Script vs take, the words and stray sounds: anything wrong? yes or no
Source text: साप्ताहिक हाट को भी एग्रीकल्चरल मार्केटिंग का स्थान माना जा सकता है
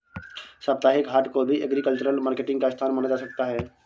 no